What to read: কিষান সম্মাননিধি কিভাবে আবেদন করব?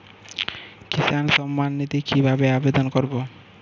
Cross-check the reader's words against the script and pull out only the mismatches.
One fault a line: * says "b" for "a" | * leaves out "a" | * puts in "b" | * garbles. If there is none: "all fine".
all fine